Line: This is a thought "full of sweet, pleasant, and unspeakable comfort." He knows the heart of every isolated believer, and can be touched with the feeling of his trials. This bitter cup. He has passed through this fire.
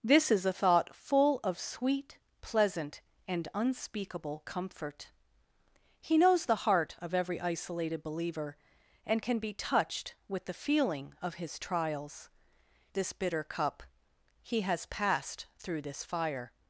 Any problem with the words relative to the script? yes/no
no